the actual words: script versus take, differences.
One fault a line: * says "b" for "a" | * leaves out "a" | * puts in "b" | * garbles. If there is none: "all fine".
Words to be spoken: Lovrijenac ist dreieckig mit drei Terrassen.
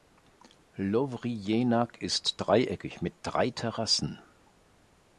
all fine